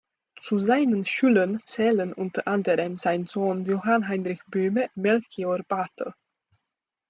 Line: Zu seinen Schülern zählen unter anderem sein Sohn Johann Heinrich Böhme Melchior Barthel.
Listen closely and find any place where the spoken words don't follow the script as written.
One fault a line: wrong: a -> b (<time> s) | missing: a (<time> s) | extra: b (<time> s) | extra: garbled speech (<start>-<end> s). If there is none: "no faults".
no faults